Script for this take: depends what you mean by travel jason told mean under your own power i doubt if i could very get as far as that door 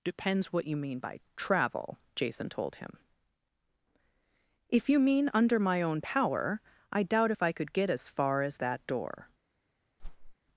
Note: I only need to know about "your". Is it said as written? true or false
false